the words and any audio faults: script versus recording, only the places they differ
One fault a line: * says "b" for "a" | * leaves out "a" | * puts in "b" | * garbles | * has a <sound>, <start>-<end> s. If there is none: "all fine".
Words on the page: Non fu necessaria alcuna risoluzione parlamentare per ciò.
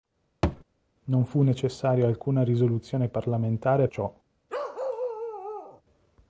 * has a thud, 0.4-0.6 s
* leaves out "per"
* has a bark, 4.5-5.8 s